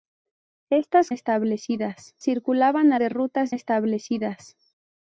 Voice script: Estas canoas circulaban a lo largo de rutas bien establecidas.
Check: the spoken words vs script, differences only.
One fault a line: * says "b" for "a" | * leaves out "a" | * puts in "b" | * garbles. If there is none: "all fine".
* says "establecidas" for "canoas"
* leaves out "lo largo"
* leaves out "bien"